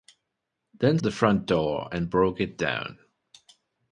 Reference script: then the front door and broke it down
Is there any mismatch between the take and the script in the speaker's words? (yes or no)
no